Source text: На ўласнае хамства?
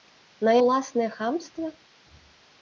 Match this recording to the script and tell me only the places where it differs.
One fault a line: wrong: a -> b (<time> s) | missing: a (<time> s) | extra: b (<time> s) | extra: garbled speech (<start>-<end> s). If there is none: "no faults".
no faults